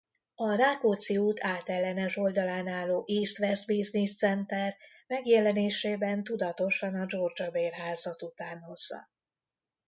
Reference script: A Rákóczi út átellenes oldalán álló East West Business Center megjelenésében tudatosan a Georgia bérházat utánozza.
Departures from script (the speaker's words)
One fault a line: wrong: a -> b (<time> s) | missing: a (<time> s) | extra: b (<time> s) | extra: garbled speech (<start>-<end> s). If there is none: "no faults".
no faults